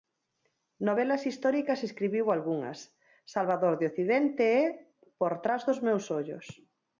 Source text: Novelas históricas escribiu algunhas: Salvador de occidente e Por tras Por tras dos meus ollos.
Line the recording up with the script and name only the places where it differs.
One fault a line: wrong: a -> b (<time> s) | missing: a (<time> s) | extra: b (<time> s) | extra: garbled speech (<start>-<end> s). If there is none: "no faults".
missing: Por tras (5.6 s)